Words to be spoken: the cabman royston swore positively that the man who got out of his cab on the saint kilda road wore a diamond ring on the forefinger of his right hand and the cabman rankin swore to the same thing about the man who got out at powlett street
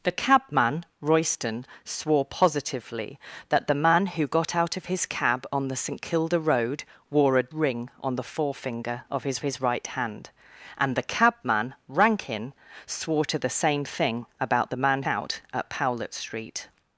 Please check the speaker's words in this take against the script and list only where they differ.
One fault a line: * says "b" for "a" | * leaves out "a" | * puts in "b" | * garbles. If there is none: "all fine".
* leaves out "diamond"
* puts in "his"
* leaves out "who got"